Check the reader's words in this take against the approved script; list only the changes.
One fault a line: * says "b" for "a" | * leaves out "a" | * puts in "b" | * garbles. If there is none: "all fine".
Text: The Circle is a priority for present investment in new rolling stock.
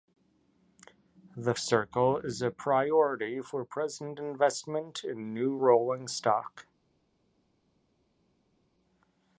all fine